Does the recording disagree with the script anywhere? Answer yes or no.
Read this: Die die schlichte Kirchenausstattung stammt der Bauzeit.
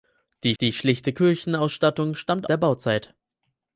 no